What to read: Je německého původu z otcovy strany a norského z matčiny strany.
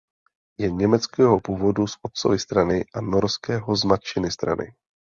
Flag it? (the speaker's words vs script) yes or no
no